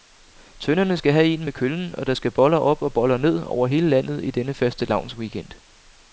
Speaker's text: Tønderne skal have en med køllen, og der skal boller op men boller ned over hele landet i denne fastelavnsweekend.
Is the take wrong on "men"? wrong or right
wrong